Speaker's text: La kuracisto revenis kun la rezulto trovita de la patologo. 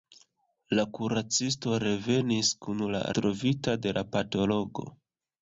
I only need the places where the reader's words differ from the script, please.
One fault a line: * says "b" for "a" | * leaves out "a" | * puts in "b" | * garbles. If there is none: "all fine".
* leaves out "rezulto"